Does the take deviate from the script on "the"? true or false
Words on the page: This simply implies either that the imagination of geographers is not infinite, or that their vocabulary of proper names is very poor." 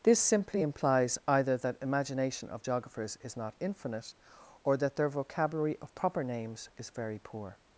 true